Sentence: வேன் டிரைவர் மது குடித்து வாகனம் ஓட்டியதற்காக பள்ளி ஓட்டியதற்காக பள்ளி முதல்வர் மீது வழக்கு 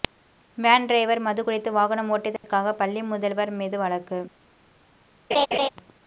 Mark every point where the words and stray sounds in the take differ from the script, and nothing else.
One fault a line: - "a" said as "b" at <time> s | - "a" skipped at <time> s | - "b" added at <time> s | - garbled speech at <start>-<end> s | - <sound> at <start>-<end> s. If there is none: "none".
- dropout at 2.4-2.4 s
- "ஓட்டியதற்காக பள்ளி" skipped at 3.0 s
- laugh at 5.3-5.7 s